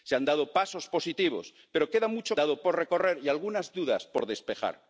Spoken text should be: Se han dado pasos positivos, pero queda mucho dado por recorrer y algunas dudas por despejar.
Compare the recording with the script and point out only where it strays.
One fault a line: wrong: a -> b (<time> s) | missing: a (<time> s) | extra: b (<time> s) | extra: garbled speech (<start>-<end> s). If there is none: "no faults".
no faults